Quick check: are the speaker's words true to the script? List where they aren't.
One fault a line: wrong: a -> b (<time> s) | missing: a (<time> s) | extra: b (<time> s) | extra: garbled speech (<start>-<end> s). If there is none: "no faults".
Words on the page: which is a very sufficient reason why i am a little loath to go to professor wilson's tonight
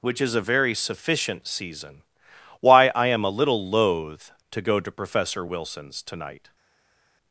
wrong: reason -> season (1.5 s)